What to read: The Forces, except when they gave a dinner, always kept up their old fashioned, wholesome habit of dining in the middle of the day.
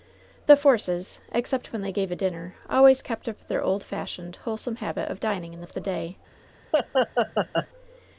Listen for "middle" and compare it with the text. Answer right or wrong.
wrong